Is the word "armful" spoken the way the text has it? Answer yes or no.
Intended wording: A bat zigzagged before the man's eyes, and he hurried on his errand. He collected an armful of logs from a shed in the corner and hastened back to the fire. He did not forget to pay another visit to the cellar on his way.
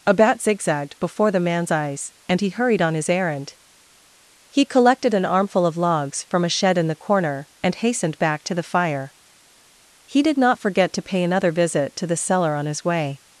yes